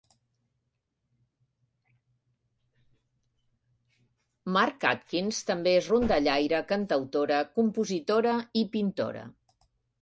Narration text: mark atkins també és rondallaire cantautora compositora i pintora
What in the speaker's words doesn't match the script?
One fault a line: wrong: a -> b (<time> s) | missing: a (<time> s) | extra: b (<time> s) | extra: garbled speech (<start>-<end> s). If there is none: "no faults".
no faults